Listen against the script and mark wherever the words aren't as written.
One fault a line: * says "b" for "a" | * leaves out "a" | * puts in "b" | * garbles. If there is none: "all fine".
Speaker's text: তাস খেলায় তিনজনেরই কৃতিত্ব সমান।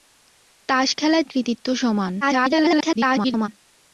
* leaves out "তিনজনেরই"
* garbles